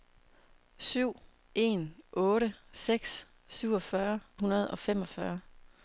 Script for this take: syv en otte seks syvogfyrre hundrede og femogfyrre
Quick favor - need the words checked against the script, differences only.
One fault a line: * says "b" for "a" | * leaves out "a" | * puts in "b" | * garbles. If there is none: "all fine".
all fine